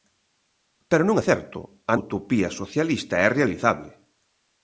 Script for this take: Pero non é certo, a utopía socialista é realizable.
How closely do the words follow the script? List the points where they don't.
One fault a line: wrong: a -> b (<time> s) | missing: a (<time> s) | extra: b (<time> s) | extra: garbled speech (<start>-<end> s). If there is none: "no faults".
no faults